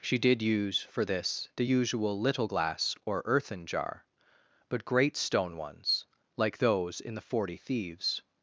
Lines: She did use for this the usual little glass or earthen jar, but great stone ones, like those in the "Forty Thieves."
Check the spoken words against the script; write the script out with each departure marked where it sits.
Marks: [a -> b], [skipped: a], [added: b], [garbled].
She did use for this the usual little glass or earthen jar, but great stone ones, like those in the "Forty Thieves."